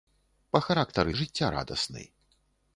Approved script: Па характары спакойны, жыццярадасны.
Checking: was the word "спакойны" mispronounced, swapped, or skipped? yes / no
yes